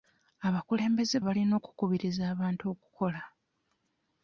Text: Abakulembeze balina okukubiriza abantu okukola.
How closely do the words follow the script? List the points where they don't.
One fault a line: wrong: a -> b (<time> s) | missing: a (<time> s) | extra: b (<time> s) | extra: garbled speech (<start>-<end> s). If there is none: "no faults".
no faults